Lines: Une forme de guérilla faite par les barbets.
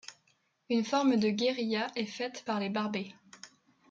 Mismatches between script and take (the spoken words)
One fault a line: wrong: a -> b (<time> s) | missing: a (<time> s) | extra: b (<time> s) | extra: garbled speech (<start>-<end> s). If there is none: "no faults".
extra: est (1.9 s)